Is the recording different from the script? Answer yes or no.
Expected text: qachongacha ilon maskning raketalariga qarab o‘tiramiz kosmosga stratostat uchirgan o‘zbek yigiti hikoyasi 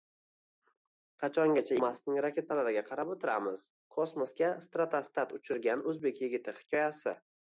yes